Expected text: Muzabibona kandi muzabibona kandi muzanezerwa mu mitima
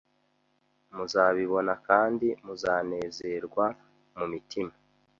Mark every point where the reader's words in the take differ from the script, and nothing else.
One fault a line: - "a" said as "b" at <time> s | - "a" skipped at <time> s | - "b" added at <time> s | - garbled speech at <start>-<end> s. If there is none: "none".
- "muzabibona kandi" skipped at 2.3 s